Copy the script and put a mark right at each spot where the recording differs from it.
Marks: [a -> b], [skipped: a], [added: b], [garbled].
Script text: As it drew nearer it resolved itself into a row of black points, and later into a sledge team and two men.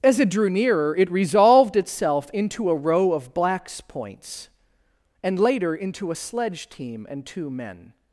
As it drew nearer it resolved itself into a row of [black -> blacks] points, and later into a sledge team and two men.